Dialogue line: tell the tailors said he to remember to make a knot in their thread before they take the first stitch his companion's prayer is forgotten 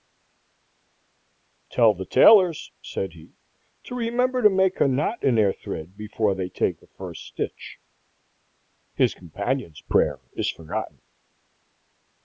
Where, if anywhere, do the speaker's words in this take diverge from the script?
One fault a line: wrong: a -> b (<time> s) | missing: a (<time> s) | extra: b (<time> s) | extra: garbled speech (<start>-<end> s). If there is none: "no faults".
no faults